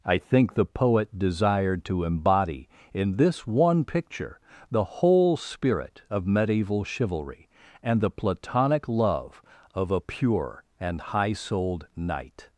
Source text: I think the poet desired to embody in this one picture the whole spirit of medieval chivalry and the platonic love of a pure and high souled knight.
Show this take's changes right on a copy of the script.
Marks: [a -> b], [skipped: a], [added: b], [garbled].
I think the poet desired to embody in this one picture the whole spirit of medieval chivalry and the platonic love of a pure and high souled knight.